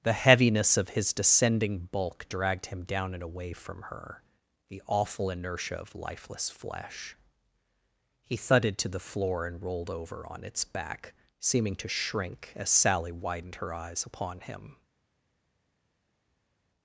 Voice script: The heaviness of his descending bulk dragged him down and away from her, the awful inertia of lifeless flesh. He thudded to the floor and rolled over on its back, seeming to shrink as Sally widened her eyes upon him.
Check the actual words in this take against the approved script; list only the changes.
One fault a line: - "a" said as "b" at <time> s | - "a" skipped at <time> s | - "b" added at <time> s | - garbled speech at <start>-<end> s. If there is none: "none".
none